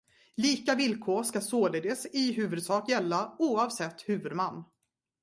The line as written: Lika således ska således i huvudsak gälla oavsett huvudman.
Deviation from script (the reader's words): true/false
true